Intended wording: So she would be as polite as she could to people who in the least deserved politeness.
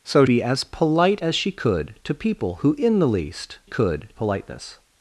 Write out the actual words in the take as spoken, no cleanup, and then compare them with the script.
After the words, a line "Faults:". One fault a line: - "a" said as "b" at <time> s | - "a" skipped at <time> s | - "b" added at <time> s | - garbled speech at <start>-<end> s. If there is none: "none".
So be as polite as she could to people who in the least could politeness.
Faults:
- "she would" skipped at 0.2 s
- "deserved" said as "could" at 3.6 s